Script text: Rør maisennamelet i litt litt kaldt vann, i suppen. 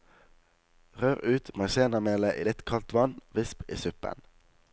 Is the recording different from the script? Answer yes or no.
yes